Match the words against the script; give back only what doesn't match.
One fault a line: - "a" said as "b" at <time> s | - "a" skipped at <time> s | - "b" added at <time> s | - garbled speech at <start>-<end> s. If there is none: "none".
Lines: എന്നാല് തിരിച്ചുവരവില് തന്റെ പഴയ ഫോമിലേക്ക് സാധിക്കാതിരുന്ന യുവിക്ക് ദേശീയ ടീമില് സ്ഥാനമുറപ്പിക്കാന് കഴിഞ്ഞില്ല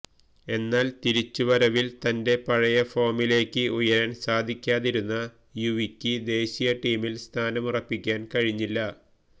- "ഉയരാന്" added at 3.8 s